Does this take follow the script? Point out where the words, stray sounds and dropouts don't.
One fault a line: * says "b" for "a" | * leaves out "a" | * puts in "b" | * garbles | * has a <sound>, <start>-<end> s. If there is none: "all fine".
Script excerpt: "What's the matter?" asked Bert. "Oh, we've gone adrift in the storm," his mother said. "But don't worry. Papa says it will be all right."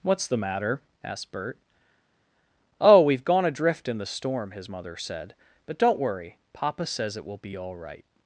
all fine